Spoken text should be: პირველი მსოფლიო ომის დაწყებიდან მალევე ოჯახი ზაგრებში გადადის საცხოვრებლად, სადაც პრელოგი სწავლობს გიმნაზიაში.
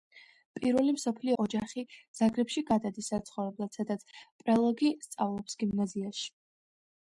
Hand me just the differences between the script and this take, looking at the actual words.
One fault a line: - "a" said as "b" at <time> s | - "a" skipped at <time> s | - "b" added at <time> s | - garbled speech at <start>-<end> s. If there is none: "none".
- "ომის დაწყებიდან მალევე" skipped at 1.4 s